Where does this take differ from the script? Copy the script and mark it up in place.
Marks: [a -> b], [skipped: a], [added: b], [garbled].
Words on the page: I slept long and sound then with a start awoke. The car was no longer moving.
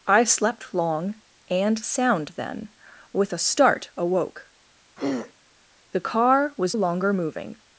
I slept long and sound then with a start awoke. The car was [skipped: no] longer moving.